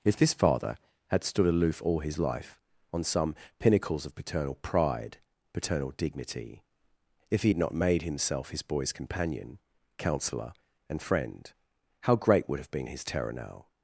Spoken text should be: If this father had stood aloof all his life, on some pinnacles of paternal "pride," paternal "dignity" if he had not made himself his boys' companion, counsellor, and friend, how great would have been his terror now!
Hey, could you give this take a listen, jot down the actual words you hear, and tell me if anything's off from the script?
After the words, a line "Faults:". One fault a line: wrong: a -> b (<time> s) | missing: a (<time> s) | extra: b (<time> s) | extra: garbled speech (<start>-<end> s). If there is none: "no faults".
If this father had stood aloof all his life, on some pinnacles of paternal "pride," paternal "dignity" if he had not made himself his boys' companion, counsellor, and friend, how great would have been his terror now!
Faults:
no faults